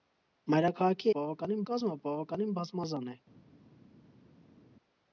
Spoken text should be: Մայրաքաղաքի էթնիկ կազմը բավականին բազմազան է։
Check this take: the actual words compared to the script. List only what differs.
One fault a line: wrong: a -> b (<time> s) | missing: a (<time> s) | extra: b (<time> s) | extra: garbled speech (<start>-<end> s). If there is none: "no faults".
wrong: էթնիկ -> բավականին (1.2 s)